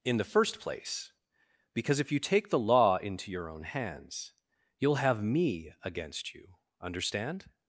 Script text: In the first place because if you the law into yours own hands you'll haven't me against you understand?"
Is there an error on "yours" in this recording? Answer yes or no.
yes